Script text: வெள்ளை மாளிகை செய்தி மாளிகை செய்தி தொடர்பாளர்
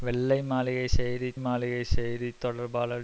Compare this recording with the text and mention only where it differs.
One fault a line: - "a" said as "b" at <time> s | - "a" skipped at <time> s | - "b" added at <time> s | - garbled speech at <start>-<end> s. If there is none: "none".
none